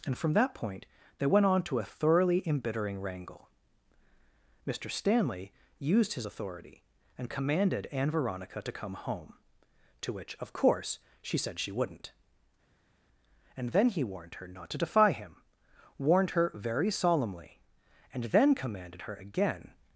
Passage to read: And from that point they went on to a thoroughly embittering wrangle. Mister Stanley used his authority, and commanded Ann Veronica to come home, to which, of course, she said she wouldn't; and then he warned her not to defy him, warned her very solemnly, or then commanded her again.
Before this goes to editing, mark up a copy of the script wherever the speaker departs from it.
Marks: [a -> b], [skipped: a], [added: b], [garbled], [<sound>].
And from that point they went on to a thoroughly embittering wrangle. Mister Stanley used his authority, and commanded Ann Veronica to come home, to which, of course, she said she wouldn't; and then he warned her not to defy him, warned her very solemnly, [or -> and] then commanded her again.